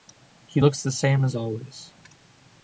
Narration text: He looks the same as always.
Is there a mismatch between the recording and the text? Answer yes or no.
no